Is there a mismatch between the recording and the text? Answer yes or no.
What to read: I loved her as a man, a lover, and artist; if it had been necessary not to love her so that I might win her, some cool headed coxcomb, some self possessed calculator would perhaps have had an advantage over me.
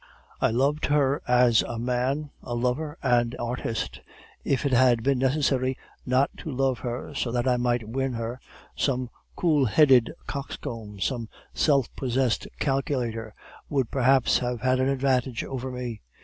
no